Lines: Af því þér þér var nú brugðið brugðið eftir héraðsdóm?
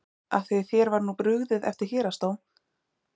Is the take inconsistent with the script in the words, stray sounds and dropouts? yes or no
yes